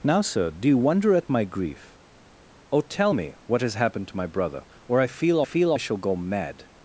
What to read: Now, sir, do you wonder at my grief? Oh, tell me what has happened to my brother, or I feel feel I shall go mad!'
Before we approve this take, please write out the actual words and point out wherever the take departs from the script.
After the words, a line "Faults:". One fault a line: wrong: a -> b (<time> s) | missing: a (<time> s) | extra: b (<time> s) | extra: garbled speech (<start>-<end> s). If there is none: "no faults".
Now, sir, do you wonder at my grief? Oh, tell me what has happened to my brother, or I feel feel I shall go mad!'
Faults:
no faults